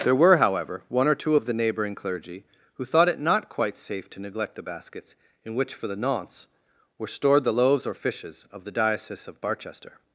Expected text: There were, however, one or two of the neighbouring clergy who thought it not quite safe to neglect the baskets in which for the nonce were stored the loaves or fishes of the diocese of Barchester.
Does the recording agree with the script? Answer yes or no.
yes